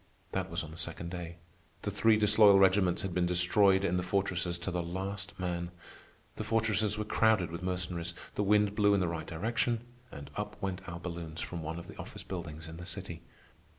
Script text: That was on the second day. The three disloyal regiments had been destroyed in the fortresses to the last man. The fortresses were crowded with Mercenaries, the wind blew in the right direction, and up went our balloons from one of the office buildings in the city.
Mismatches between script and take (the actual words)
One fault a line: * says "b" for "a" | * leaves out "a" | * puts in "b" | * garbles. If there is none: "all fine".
all fine